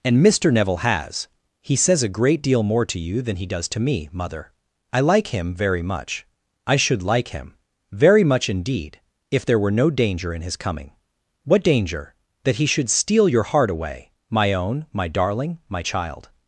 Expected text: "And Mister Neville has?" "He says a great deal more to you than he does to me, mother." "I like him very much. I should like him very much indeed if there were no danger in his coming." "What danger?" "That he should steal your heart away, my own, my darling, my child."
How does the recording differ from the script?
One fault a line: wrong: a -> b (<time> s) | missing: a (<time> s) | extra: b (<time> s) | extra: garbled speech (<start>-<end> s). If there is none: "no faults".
no faults